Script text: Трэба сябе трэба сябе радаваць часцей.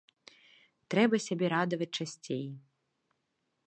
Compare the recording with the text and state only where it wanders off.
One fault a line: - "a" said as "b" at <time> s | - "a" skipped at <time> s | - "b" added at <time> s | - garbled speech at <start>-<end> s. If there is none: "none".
- "трэба сябе" skipped at 1.4 s